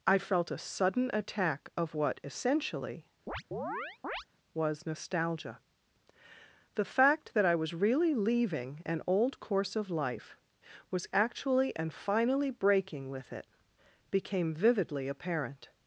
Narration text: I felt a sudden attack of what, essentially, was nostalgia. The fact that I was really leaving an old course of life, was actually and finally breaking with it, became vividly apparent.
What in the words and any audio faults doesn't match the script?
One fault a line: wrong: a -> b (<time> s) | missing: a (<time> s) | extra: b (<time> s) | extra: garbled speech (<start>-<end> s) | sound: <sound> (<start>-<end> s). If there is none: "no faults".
sound: chirp (3.3-4.3 s)